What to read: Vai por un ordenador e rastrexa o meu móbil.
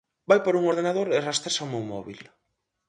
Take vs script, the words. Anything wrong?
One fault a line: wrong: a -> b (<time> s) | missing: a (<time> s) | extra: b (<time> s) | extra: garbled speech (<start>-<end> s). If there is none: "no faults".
no faults